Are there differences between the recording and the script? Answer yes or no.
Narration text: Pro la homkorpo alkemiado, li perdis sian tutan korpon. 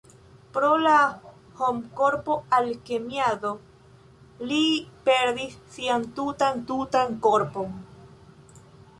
yes